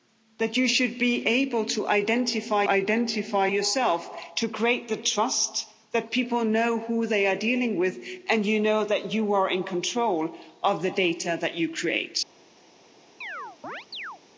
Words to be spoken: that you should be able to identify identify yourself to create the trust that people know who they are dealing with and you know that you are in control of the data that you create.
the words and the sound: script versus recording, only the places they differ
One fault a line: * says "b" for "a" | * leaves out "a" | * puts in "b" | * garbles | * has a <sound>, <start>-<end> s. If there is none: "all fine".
* has a chirp, 13.2-14.2 s